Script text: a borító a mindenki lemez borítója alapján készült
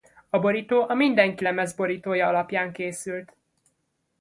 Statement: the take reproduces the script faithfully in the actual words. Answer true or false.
true